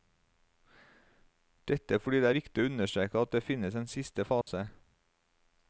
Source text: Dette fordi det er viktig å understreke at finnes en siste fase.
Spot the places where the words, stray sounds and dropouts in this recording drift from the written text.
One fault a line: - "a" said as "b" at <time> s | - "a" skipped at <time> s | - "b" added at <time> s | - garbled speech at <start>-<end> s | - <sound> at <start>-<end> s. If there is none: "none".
- "det" added at 3.3 s
- dropout at 4.4-4.5 s